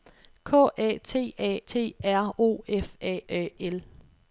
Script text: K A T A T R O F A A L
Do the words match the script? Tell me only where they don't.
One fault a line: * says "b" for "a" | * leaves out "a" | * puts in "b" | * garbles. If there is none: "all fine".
all fine